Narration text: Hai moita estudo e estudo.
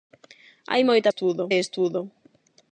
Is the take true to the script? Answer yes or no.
yes